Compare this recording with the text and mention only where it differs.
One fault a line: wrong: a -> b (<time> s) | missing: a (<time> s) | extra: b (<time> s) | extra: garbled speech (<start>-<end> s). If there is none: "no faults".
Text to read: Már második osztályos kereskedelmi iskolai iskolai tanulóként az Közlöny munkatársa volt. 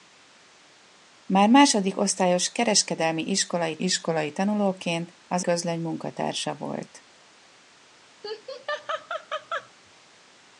no faults